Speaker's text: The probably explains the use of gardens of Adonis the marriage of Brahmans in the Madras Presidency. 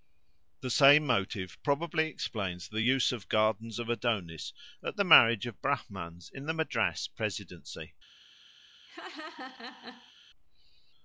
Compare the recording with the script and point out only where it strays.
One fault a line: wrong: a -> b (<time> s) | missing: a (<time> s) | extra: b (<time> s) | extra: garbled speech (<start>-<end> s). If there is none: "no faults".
extra: same motive (0.7 s)
extra: at (4.8 s)